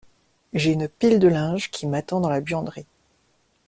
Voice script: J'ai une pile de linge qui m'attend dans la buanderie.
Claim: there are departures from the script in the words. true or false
false